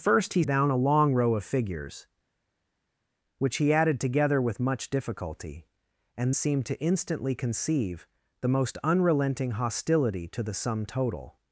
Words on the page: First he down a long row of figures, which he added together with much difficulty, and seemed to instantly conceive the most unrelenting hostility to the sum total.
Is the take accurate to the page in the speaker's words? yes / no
yes